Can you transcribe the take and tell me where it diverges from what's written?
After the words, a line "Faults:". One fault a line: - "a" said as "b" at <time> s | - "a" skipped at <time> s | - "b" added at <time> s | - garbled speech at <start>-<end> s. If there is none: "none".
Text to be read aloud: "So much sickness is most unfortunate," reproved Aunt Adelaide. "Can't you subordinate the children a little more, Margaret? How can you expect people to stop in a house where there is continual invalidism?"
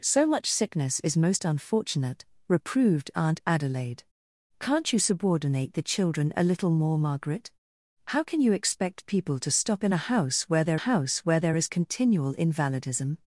"So much sickness is most unfortunate," reproved Aunt Adelaide. "Can't you subordinate the children a little more, Margaret? How can you expect people to stop in a house where there house where there is continual invalidism?"
Faults:
- "house where there" added at 10.7 s